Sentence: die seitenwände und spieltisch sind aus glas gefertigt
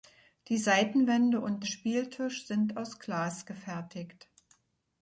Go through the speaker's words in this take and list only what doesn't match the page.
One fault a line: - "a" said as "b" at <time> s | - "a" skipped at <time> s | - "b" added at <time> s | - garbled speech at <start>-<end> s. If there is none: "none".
none